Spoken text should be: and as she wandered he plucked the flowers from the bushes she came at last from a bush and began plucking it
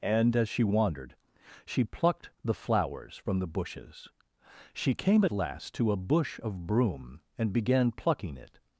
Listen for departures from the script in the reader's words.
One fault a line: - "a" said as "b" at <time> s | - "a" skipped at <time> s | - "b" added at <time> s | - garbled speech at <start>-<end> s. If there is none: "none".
- "he" said as "she" at 1.6 s
- "from" said as "to" at 5.7 s
- "of broom" added at 6.4 s